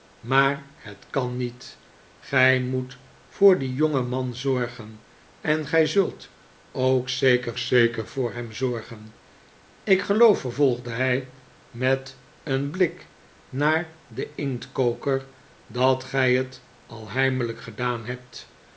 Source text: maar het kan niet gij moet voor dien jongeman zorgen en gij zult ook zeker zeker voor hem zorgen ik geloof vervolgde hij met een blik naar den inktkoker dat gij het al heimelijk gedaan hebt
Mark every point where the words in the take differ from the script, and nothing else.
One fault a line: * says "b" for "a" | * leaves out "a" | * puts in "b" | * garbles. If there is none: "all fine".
all fine